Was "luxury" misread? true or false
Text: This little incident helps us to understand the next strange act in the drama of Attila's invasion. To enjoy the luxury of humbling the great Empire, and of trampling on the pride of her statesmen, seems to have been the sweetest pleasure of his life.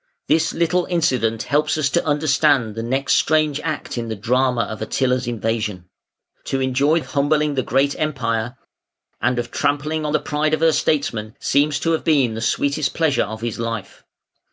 true